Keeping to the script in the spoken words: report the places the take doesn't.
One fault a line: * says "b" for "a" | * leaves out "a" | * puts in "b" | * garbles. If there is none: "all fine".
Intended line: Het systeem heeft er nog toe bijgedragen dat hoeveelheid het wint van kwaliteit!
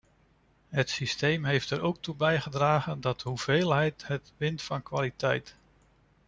* says "ook" for "nog"